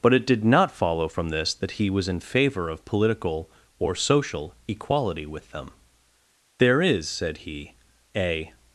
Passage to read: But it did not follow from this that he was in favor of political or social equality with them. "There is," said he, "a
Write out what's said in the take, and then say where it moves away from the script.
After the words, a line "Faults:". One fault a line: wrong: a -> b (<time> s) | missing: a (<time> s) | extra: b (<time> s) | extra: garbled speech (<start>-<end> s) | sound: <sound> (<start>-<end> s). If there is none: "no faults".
But it did not follow from this that he was in favor of political or social equality with them. "There is," said he, "a
Faults:
no faults